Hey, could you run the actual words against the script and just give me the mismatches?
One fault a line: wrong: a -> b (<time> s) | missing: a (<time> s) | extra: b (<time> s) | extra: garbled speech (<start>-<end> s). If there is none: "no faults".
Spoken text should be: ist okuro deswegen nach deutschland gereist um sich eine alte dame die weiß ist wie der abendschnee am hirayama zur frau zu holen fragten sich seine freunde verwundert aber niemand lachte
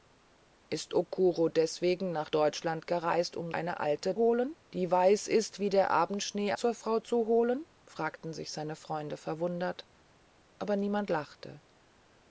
missing: sich (3.5 s)
wrong: dame -> holen (4.2 s)
missing: am hirayama (6.5 s)